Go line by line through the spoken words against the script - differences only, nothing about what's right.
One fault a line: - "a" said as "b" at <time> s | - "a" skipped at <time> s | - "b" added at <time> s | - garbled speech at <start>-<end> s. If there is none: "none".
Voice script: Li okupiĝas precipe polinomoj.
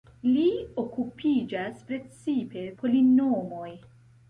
none